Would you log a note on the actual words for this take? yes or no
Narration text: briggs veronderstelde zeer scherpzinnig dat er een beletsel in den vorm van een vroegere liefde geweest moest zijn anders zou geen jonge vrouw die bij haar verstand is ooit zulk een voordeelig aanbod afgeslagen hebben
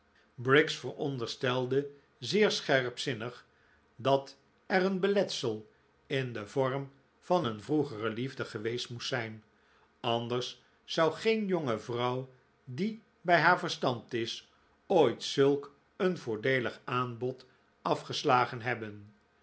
no